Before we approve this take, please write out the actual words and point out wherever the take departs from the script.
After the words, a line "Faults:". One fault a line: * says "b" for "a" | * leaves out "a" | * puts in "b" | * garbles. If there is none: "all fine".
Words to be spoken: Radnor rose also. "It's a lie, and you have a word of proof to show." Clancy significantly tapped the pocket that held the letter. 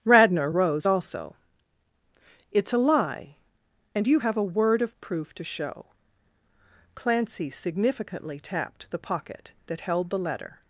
Radnor rose also. "It's a lie, and you have a word of proof to show." Clancy significantly tapped the pocket that held the letter.
Faults:
all fine